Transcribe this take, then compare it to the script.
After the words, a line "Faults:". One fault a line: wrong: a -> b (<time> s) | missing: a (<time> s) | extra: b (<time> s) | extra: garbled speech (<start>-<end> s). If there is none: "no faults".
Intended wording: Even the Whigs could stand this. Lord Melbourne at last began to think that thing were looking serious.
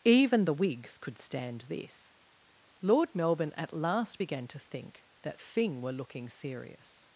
Even the Whigs could stand this. Lord Melbourne at last began to think that thing were looking serious.
Faults:
no faults